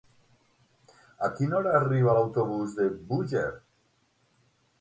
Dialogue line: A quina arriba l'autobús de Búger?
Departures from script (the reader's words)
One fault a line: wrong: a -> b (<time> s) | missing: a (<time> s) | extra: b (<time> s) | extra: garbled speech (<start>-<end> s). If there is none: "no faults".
extra: hora (1.6 s)